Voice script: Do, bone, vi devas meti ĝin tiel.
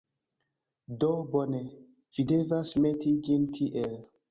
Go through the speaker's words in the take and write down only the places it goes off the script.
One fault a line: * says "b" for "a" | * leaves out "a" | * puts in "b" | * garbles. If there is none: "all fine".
all fine